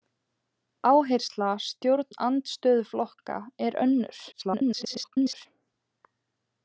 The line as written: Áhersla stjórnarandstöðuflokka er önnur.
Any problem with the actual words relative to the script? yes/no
yes